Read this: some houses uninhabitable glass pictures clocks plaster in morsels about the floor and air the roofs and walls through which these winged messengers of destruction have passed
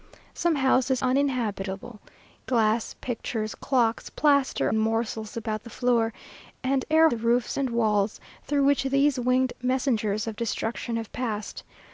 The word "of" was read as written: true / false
true